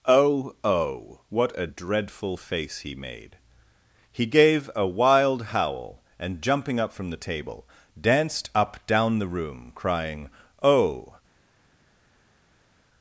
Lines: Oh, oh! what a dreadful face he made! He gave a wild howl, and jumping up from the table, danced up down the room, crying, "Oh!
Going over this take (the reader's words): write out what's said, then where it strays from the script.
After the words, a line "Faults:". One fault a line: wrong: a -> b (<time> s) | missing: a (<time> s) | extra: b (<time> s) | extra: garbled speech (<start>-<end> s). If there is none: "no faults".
Oh, oh! what a dreadful face he made! He gave a wild howl, and jumping up from the table, danced up down the room, crying, "Oh!
Faults:
no faults